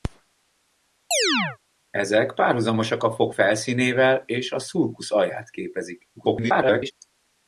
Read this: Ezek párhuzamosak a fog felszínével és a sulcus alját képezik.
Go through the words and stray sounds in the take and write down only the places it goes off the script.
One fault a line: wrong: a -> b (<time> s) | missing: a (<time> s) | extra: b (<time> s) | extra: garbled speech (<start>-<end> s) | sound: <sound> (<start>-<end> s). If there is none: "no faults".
sound: chirp (1.1-1.6 s)
extra: garbled speech (6.2-6.9 s)